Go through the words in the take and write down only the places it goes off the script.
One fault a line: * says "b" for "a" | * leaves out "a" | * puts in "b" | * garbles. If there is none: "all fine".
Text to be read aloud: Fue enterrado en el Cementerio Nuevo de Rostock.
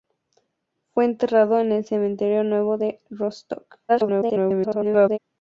* garbles